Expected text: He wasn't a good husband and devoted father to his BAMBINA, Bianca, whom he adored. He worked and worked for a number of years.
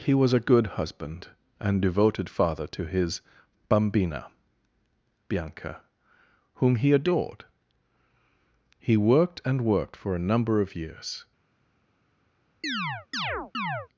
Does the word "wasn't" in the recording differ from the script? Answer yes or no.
yes